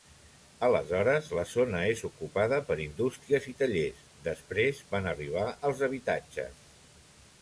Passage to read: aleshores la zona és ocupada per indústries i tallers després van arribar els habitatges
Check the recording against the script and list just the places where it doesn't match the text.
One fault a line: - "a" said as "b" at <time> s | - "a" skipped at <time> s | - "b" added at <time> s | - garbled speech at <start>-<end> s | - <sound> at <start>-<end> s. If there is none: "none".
none